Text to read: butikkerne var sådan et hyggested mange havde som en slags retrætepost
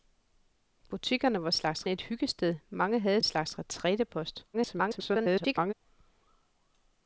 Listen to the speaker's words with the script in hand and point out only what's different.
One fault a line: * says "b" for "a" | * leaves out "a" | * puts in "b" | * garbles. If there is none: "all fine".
* says "slags" for "sådan"
* leaves out "som"
* garbles